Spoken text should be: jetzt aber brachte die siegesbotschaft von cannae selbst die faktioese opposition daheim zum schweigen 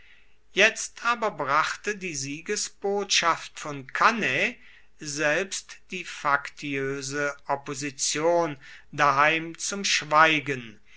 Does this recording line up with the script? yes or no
yes